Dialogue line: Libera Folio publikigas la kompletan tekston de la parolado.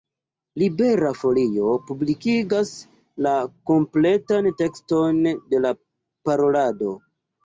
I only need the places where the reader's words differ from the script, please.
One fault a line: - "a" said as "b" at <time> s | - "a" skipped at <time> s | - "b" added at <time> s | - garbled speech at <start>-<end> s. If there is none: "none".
none